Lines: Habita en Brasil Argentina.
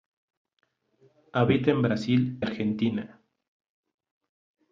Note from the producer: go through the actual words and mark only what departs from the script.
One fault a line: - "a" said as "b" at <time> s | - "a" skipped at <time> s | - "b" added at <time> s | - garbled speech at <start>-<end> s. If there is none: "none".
none